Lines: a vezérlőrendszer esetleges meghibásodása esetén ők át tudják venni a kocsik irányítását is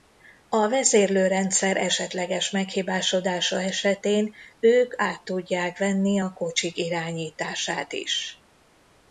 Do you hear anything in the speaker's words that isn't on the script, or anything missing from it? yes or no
no